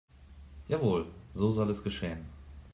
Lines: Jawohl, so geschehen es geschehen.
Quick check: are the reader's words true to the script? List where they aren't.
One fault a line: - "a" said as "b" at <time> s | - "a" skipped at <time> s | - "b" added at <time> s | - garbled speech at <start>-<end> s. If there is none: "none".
- "geschehen" said as "soll" at 1.5 s